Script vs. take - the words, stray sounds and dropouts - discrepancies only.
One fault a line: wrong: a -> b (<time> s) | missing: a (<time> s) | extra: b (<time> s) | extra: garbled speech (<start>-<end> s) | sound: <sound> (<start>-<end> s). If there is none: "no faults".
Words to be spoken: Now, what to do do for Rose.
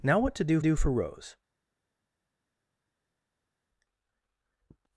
no faults